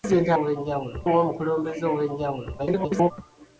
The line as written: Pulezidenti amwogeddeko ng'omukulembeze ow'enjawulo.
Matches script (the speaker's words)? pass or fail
fail